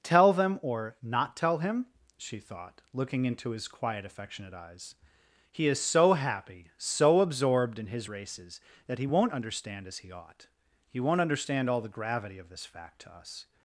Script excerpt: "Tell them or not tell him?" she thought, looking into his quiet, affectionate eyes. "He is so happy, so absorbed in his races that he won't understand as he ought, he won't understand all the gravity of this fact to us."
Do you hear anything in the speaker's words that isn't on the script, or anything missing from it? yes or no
no